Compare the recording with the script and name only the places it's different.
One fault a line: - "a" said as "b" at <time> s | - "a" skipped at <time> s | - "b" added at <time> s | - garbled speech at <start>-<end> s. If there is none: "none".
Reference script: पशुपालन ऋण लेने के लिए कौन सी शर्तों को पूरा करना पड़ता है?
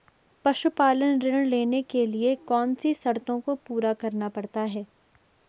none